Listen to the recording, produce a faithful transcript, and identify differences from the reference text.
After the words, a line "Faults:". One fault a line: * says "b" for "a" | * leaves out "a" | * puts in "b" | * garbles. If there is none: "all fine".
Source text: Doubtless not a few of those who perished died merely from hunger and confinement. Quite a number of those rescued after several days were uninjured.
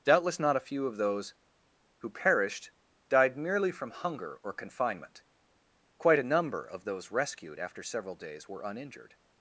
Doubtless not a few of those who perished died merely from hunger or confinement. Quite a number of those rescued after several days were uninjured.
Faults:
* says "or" for "and"